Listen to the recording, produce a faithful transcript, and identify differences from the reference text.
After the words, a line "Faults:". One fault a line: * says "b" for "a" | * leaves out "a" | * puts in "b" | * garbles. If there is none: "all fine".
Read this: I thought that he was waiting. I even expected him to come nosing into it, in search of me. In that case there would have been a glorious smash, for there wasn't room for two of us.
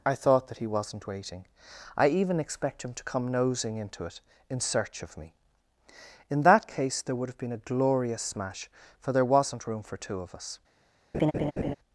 I thought that he wasn't waiting. I even expect him to come nosing into it, in search of me. In that case there would have been a glorious smash, for there wasn't room for two of us.
Faults:
* says "wasn't" for "was"
* says "expect" for "expected"